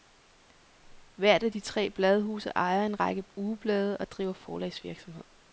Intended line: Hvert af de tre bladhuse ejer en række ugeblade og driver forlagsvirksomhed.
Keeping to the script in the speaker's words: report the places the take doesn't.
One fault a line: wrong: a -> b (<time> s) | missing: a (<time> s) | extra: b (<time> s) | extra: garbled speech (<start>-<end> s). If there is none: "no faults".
no faults